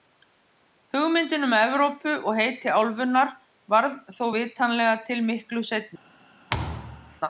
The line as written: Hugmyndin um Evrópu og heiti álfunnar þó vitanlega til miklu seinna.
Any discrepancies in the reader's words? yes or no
yes